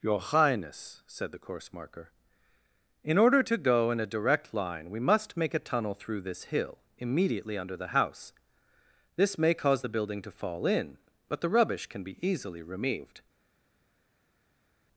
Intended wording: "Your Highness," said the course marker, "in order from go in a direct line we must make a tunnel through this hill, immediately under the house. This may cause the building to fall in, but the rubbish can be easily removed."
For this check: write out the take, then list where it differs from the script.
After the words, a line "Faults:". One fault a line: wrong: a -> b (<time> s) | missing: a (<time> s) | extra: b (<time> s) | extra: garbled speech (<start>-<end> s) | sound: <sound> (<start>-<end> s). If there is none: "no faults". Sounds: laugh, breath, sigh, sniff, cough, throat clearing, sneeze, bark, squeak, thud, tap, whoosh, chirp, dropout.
"Your Highness," said the course marker, "in order to go in a direct line we must make a tunnel through this hill, immediately under the house. This may cause the building to fall in, but the rubbish can be easily removed."
Faults:
wrong: from -> to (3.4 s)